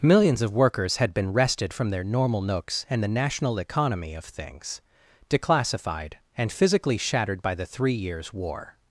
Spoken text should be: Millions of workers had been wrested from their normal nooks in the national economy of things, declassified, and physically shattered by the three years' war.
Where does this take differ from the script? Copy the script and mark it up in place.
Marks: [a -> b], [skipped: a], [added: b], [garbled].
Millions of workers had been wrested from their normal nooks [in -> and] the national economy of things, declassified, and physically shattered by the three years' war.